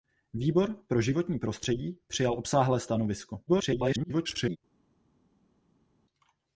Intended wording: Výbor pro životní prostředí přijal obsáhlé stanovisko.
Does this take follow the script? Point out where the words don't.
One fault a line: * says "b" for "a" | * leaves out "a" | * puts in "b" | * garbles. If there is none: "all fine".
* garbles